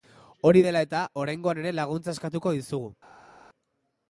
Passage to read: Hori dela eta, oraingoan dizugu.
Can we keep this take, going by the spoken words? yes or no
no